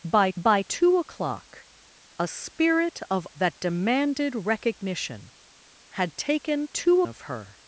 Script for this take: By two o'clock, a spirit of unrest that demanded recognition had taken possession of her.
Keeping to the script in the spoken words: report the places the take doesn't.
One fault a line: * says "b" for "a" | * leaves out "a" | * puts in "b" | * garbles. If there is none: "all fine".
* puts in "by"
* leaves out "unrest"
* says "two" for "possession"